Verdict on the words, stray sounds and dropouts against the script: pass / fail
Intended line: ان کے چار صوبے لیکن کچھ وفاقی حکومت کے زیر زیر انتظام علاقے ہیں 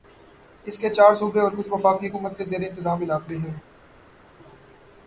fail